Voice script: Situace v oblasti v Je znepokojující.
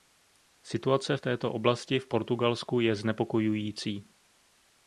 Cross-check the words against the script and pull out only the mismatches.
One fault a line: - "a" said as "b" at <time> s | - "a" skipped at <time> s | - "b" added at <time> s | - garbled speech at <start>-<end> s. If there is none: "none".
- "této" added at 1.2 s
- "Portugalsku" added at 2.1 s